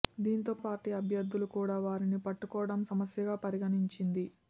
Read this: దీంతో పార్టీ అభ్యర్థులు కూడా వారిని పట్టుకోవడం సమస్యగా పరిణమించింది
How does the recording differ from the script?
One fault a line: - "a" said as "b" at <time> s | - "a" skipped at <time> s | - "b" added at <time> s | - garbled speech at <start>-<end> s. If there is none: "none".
none